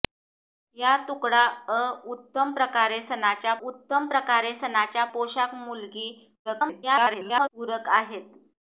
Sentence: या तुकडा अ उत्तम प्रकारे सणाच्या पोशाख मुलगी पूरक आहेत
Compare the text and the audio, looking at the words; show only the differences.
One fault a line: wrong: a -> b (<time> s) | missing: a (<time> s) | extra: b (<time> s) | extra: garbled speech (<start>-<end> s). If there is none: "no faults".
extra: उत्तम प्रकारे सणाच्या (3.6 s)
extra: garbled speech (6.5-7.5 s)